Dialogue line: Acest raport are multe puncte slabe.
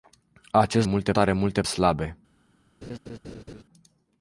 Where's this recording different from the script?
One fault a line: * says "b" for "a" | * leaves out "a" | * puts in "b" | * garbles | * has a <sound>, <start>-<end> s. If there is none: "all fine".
* says "multe" for "raport"
* leaves out "puncte"
* has a laugh, 2.8-3.6 s